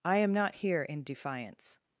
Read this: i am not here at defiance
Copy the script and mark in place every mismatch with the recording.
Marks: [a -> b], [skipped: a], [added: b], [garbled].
i am not here [at -> in] defiance